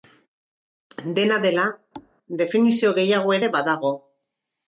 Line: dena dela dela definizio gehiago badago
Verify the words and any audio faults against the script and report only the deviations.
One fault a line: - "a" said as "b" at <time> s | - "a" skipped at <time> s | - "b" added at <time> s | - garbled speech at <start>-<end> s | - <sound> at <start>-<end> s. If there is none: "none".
- "dela" skipped at 1.7 s
- thud at 1.9-2.1 s
- "ere" added at 3.4 s